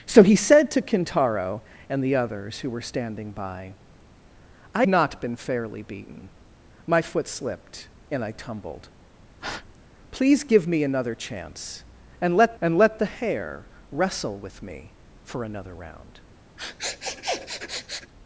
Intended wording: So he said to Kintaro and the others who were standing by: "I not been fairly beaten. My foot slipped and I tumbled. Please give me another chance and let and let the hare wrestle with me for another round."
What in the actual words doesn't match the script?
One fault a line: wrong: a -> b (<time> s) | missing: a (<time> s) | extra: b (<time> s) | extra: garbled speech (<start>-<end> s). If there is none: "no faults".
no faults